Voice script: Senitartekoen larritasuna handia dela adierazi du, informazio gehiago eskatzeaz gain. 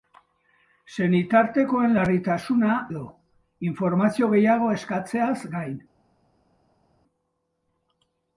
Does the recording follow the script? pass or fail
fail